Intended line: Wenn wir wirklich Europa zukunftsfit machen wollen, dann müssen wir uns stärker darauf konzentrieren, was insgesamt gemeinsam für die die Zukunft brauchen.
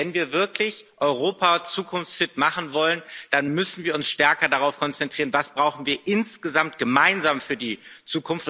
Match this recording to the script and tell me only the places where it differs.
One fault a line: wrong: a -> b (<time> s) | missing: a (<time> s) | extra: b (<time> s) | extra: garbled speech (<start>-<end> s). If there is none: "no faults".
extra: wir (5.6 s)
missing: die (7.8 s)